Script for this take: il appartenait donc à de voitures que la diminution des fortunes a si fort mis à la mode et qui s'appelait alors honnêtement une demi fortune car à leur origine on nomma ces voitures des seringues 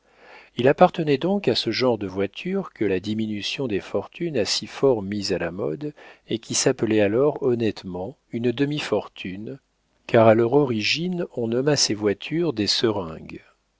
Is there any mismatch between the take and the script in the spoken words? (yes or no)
yes